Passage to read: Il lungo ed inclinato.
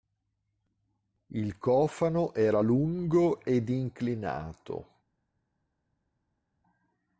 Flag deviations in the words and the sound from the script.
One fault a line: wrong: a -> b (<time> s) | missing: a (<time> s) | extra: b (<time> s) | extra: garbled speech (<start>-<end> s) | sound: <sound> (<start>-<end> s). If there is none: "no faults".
extra: cofano era (1.6 s)